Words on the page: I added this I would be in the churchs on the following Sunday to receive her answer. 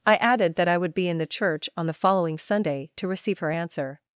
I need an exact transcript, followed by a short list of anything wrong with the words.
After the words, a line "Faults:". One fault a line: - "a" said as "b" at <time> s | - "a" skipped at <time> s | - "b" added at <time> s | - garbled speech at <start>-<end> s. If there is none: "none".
I added that I would be in the church on the following Sunday to receive her answer.
Faults:
- "this" said as "that" at 0.6 s
- "churchs" said as "church" at 1.3 s